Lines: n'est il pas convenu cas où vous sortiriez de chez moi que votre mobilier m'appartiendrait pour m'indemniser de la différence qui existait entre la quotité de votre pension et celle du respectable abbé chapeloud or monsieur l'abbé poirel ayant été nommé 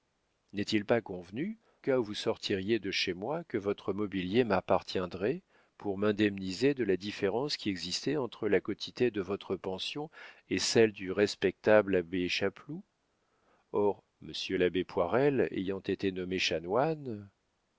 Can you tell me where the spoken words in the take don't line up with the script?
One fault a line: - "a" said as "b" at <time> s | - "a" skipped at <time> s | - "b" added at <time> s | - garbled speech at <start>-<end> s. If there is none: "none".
none